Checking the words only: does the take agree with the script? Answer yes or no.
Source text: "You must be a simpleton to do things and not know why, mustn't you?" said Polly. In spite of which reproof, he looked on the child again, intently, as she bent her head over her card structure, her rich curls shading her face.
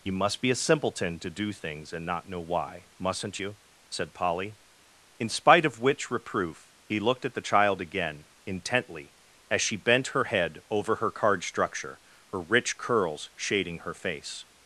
no